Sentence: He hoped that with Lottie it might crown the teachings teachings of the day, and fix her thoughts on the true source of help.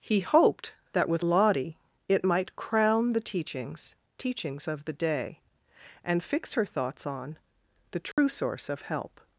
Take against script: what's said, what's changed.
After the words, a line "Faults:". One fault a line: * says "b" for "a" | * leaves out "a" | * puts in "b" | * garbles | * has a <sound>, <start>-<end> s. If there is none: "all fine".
He hoped that with Lottie it might crown the teachings teachings of the day, and fix her thoughts on the true source of help.
Faults:
* has a dropout, 8.1-8.2 s